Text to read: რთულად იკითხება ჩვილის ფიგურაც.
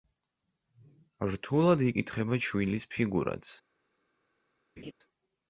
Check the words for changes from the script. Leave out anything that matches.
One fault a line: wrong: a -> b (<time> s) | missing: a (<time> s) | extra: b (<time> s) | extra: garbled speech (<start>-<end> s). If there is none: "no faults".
no faults